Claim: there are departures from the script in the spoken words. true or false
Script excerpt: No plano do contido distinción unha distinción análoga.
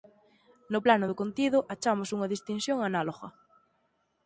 true